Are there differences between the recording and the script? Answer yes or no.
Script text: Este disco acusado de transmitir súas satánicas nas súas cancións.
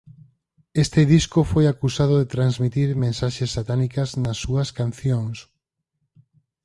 yes